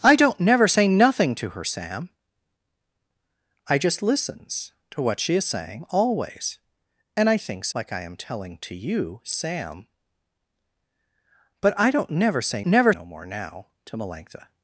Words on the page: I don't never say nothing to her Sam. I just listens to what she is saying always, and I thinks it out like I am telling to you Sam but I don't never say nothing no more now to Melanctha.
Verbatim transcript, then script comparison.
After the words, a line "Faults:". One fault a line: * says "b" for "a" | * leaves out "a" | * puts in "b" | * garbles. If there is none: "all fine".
I don't never say nothing to her Sam. I just listens to what she is saying always, and I thinks like I am telling to you Sam but I don't never say never no more now to Melanctha.
Faults:
* leaves out "it out"
* says "never" for "nothing"